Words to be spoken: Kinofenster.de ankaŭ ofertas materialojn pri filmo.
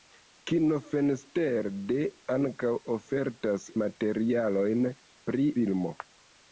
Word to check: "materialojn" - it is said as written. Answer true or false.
true